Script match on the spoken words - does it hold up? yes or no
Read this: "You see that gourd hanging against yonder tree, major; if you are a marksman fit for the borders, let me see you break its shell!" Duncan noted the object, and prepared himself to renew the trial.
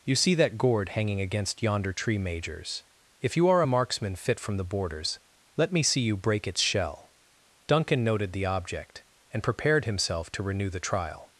no